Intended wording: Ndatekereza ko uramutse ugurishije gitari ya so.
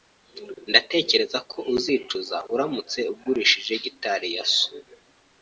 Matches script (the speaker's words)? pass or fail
fail